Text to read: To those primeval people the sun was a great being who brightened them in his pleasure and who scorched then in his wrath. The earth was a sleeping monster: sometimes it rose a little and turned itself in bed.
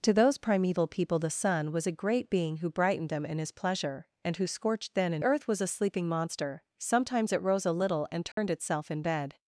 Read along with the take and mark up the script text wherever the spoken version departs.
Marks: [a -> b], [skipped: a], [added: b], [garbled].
To those primeval people the sun was a great being who brightened them in his pleasure and who scorched then in [skipped: his wrath. The] earth was a sleeping monster: sometimes it rose a little and turned itself in bed.